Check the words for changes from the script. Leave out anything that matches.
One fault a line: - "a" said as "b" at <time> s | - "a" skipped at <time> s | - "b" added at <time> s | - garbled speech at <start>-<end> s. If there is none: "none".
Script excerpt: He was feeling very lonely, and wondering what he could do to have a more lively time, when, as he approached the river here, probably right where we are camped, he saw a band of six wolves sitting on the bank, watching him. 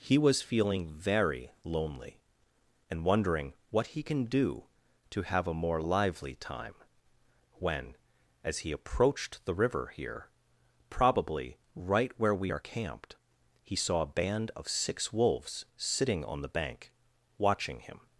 - "could" said as "can" at 4.0 s